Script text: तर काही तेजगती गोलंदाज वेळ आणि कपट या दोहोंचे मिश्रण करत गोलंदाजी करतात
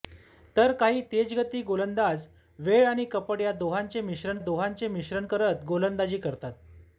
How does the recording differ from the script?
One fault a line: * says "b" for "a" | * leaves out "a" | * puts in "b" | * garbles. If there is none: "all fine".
* puts in "दोहोंचे मिश्रण"